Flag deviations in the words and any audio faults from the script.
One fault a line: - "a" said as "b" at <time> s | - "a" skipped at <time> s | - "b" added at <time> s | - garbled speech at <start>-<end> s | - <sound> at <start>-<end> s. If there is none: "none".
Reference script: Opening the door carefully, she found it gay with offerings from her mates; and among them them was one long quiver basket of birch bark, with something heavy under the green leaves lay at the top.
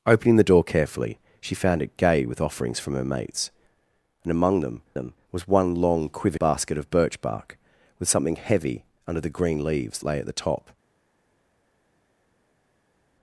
none